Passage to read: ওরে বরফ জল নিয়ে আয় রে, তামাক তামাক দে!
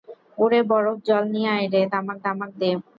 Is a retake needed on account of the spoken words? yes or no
no